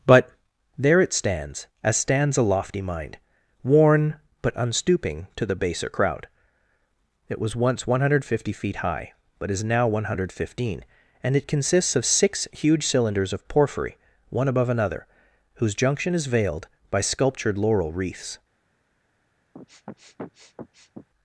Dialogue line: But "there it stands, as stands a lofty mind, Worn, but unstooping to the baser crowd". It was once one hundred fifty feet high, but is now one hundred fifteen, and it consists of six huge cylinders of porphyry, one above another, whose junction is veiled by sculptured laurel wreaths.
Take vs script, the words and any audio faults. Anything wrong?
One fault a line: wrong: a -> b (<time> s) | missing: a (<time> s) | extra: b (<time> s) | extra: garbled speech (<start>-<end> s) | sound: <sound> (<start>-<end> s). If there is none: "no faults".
sound: sniff (19.5-21.1 s)